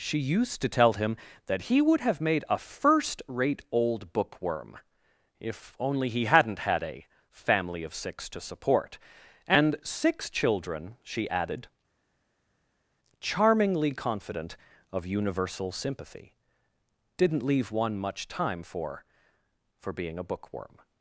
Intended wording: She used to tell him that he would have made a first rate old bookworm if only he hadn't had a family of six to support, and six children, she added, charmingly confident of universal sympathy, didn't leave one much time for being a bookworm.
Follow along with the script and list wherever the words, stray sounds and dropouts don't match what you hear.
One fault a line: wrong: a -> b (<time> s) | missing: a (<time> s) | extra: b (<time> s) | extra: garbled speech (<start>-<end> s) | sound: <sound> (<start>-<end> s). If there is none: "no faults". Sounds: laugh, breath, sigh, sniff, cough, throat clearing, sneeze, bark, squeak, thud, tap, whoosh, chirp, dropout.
extra: for (19.8 s)